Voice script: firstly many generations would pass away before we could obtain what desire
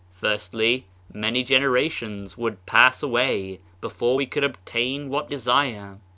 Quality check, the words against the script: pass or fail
pass